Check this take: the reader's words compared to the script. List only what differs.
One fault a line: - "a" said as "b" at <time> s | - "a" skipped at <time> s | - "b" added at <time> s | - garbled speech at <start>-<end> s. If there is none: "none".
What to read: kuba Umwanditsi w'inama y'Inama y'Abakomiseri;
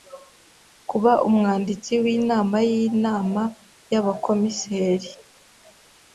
none